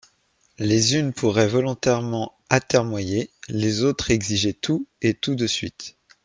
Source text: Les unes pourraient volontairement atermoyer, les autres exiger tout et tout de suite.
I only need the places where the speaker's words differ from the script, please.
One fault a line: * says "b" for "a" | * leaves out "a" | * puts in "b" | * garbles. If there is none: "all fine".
all fine